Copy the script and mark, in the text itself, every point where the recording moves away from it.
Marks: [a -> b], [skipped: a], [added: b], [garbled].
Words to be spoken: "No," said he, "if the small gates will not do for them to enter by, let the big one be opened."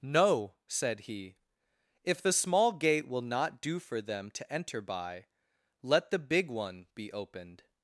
"No," said he, "if the small [gates -> gate] will not do for them to enter by, let the big one be opened."